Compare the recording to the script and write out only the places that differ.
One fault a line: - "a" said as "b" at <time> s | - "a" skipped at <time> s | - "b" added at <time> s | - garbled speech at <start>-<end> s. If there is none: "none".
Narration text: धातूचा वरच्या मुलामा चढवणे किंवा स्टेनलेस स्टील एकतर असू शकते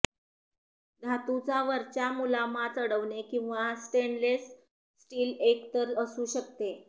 none